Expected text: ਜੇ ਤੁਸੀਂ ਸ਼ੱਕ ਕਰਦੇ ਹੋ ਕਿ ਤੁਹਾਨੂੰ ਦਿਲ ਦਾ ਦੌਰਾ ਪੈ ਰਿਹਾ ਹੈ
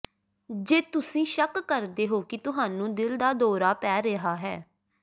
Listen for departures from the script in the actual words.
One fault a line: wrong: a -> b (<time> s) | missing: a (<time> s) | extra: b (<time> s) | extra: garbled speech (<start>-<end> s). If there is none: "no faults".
no faults